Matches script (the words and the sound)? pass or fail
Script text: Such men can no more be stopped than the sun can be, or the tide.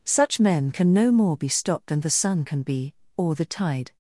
pass